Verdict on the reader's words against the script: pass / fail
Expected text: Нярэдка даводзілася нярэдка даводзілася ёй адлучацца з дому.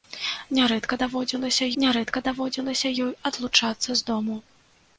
pass